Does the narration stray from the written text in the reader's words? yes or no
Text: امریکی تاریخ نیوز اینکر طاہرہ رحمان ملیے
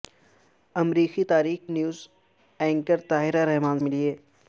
no